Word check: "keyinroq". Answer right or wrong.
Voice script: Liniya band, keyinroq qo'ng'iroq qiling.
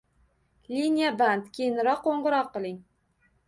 right